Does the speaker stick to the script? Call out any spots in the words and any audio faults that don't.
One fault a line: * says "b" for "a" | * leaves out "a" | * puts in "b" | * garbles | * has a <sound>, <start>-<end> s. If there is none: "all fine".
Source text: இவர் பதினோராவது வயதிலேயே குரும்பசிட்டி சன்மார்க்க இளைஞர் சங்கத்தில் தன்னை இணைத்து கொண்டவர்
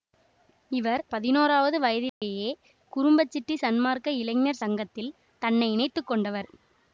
* has a dropout, 2.1-2.2 s